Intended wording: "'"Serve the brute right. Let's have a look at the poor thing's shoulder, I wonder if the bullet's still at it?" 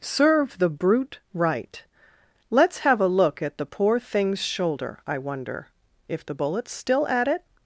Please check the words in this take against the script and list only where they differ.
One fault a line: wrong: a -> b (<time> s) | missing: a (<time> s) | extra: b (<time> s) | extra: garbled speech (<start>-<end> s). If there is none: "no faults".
no faults